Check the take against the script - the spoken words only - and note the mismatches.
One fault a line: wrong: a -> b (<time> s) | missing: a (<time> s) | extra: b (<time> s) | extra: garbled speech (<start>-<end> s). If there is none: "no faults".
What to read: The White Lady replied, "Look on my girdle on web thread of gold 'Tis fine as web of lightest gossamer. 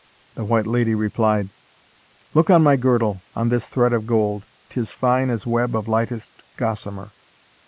wrong: web -> this (3.5 s)